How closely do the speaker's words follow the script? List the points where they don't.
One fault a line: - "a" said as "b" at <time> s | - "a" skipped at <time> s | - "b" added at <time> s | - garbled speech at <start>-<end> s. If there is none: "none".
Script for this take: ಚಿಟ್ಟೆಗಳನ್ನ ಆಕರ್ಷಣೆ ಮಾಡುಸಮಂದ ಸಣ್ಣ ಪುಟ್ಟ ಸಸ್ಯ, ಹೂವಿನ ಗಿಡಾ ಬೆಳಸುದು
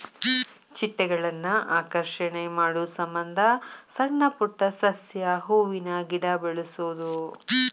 none